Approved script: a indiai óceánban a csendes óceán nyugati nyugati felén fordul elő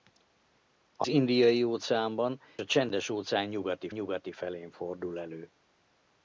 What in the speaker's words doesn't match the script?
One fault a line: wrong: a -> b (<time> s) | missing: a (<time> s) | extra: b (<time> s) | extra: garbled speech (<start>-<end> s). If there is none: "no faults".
no faults